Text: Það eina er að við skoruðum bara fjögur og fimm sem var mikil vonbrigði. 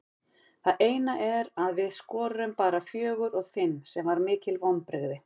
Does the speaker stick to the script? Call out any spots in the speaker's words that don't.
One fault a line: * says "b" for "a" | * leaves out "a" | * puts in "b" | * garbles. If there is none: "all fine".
all fine